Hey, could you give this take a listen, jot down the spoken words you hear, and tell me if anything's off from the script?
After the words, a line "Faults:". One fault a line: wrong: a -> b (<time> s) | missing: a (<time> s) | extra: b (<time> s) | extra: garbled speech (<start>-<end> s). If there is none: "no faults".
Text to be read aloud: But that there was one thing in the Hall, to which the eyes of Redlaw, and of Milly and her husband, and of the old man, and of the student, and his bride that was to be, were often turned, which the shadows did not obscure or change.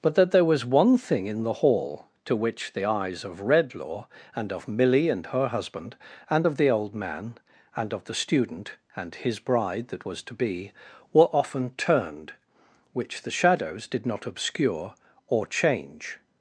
But that there was one thing in the Hall, to which the eyes of Redlaw, and of Milly and her husband, and of the old man, and of the student, and his bride that was to be, were often turned, which the shadows did not obscure or change.
Faults:
no faults